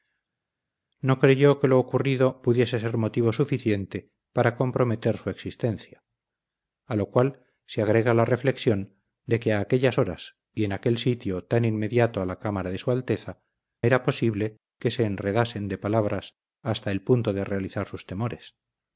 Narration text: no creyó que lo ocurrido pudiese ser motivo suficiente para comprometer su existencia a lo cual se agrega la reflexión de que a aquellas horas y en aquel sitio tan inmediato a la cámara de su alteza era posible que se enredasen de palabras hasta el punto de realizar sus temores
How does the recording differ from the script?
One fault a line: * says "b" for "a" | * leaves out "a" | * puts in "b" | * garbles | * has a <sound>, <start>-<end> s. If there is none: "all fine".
all fine